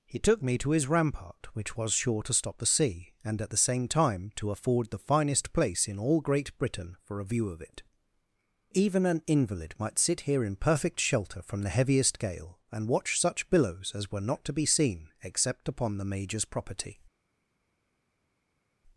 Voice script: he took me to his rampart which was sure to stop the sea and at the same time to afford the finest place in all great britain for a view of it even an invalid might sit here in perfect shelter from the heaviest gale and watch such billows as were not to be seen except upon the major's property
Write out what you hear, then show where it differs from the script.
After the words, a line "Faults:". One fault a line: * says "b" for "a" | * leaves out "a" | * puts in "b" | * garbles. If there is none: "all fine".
he took me to his rampart which was sure to stop the sea and at the same time to afford the finest place in all great britain for a view of it even an invalid might sit here in perfect shelter from the heaviest gale and watch such billows as were not to be seen except upon the major's property
Faults:
all fine